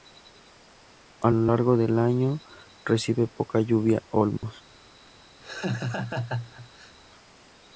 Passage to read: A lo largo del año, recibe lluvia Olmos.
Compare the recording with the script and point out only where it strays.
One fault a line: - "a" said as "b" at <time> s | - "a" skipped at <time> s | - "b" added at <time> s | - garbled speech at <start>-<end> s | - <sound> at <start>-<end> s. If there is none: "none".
- "poca" added at 3.3 s
- dropout at 4.4-4.4 s
- laugh at 5.4-6.9 s